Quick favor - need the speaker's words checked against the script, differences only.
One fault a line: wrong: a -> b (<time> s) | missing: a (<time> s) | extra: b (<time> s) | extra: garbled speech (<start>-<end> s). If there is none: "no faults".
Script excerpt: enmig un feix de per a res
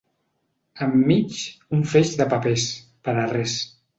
extra: papers (2.3 s)